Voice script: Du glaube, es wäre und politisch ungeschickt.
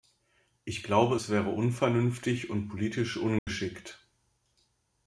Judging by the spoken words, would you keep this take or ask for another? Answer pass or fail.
fail